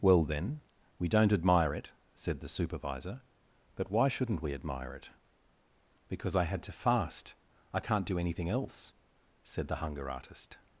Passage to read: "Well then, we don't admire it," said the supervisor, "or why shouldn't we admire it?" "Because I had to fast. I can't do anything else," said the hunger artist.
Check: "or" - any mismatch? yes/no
yes